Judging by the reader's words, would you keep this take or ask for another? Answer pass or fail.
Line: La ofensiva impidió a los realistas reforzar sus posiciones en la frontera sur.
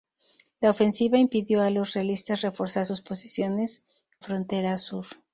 fail